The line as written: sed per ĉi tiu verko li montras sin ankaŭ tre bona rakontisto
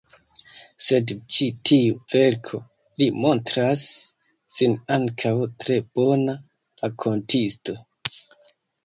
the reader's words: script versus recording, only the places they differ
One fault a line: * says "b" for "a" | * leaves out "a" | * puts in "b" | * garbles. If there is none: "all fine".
* leaves out "per"